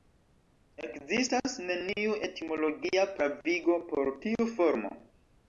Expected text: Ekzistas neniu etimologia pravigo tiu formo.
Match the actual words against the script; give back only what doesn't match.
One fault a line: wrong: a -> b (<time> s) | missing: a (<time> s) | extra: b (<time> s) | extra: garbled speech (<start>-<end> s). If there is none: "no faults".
extra: por (3.9 s)